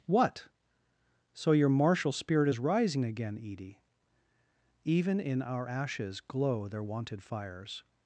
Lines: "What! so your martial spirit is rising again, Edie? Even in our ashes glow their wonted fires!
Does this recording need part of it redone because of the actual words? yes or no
no